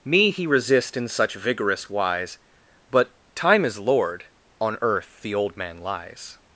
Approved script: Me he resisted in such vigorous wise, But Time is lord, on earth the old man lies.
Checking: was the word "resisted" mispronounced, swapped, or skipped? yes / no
yes